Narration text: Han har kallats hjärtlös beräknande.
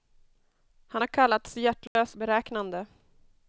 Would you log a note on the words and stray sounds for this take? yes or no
yes